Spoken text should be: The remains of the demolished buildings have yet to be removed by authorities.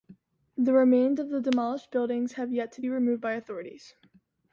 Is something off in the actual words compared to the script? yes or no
no